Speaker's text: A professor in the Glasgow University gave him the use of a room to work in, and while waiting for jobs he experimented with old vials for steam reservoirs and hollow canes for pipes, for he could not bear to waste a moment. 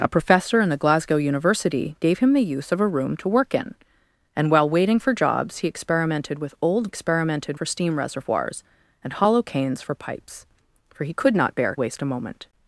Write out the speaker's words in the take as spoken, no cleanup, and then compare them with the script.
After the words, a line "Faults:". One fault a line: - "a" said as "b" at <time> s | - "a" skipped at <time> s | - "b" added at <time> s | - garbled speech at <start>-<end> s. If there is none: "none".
A professor in the Glasgow University gave him the use of a room to work in, and while waiting for jobs he experimented with old experimented for steam reservoirs and hollow canes for pipes, for he could not bear waste a moment.
Faults:
- "vials" said as "experimented" at 6.9 s
- "to" skipped at 11.8 s